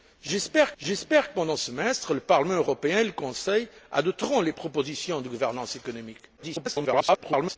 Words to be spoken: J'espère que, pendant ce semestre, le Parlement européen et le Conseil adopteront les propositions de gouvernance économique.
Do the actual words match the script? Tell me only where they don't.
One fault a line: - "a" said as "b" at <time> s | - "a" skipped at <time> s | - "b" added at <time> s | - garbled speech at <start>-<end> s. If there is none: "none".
- "j'espère" added at 0.8 s
- "ce" skipped at 1.5 s
- garbled speech at 6.4-7.6 s